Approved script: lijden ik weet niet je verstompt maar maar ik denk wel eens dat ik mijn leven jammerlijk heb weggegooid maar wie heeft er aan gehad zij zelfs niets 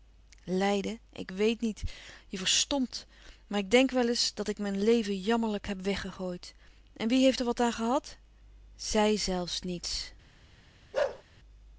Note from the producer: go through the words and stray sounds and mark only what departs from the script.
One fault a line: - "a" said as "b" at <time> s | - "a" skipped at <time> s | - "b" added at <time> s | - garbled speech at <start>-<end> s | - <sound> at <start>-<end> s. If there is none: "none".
- "maar" skipped at 3.6 s
- "maar" said as "en" at 7.0 s
- "wat" added at 7.4 s
- bark at 10.9-11.2 s